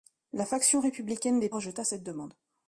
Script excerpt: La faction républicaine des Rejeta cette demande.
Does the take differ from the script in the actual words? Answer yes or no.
no